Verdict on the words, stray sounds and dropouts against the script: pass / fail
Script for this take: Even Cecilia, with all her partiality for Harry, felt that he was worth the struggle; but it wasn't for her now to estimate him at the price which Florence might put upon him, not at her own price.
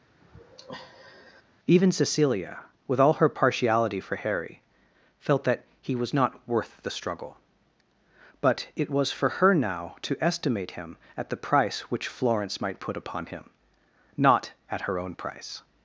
fail